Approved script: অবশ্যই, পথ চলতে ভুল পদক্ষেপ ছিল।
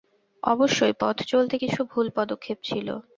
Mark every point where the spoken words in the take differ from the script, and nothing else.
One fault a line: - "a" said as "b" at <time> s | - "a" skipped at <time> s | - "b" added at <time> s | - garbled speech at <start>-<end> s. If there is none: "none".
- "কিছু" added at 1.6 s